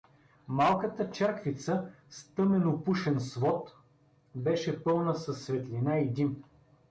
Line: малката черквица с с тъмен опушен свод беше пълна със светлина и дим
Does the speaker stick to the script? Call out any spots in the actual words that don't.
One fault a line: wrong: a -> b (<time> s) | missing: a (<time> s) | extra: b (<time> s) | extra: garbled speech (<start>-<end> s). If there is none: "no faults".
missing: с (2.3 s)